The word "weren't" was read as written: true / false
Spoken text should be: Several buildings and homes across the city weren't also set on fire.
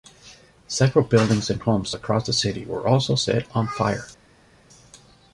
false